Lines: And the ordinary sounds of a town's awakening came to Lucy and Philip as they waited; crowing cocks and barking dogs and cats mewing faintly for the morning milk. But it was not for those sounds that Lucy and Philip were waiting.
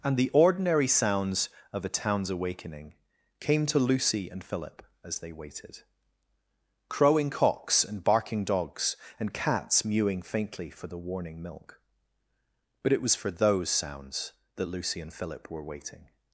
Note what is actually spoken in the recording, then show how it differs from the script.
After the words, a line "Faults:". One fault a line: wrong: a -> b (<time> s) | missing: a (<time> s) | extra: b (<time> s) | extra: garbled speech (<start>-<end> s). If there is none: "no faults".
And the ordinary sounds of a town's awakening came to Lucy and Philip as they waited; crowing cocks and barking dogs and cats mewing faintly for the warning milk. But it was for those sounds that Lucy and Philip were waiting.
Faults:
wrong: morning -> warning (11.0 s)
missing: not (13.2 s)